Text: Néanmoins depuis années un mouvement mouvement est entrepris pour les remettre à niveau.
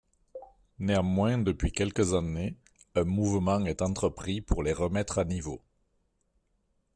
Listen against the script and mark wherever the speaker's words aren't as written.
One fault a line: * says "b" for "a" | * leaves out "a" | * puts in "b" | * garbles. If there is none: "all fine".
* puts in "quelques"
* leaves out "mouvement"